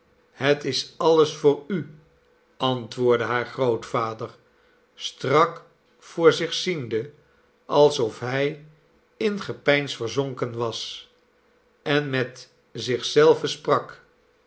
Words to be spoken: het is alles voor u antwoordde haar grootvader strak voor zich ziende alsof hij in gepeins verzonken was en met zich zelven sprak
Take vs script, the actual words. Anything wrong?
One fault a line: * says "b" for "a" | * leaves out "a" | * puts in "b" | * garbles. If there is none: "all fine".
all fine